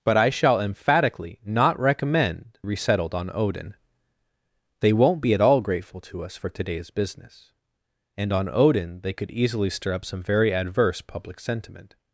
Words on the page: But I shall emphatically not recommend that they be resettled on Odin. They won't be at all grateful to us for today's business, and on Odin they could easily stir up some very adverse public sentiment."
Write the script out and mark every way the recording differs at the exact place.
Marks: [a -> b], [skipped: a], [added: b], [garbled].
But I shall emphatically not recommend [skipped: that they be] resettled on Odin. They won't be at all grateful to us for today's business, and on Odin they could easily stir up some very adverse public sentiment."